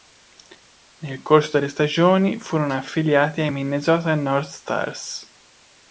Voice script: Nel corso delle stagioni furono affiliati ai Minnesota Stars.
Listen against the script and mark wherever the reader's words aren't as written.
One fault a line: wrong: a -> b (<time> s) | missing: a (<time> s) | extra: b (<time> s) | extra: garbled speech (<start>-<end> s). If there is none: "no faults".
extra: North (4.1 s)